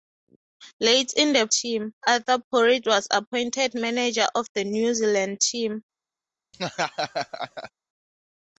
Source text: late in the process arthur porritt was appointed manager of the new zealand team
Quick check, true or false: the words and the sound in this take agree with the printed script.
false